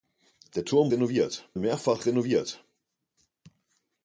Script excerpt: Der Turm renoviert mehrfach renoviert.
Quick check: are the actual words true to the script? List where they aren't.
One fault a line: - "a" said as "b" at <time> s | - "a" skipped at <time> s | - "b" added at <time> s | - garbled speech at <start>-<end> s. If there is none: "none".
none